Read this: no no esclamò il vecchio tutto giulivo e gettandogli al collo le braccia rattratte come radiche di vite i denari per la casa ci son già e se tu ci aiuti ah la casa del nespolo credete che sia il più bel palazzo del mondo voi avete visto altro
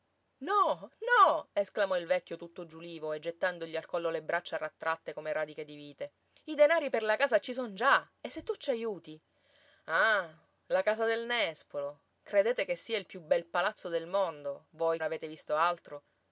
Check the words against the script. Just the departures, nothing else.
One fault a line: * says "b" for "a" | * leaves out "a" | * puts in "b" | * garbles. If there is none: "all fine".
all fine